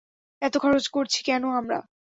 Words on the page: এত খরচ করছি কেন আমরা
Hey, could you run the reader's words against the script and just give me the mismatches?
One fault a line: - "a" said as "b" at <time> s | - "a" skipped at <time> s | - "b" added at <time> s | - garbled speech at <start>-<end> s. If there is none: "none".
none